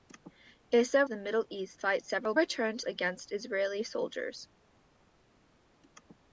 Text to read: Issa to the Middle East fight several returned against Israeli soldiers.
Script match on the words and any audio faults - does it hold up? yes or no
yes